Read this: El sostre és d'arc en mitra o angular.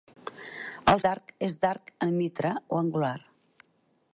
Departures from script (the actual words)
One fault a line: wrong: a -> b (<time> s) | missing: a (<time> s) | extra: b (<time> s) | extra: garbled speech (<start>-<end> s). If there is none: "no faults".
wrong: sostre -> d'arc (1.1 s)